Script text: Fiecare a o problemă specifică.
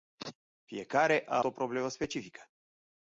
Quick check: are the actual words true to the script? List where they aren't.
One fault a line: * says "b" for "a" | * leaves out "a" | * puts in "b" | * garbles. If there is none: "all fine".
all fine